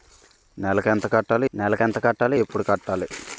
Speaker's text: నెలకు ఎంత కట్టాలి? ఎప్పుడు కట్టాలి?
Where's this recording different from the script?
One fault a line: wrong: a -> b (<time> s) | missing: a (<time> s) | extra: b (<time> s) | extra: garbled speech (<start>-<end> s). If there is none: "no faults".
extra: నెలకు ఎంత కట్టాలి (1.5 s)